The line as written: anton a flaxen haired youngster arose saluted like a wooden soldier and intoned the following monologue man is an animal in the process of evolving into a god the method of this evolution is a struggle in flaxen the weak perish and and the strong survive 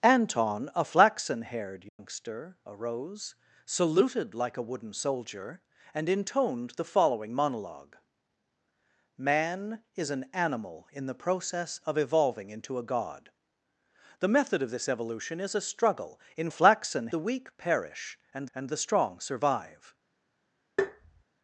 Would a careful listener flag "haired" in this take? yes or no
no